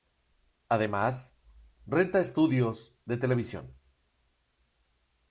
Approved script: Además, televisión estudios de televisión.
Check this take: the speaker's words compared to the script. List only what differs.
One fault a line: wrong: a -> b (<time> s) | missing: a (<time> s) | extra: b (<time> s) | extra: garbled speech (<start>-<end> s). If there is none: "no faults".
wrong: televisión -> renta (1.9 s)